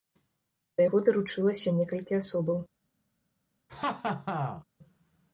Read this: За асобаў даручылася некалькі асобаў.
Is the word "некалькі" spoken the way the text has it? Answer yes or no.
yes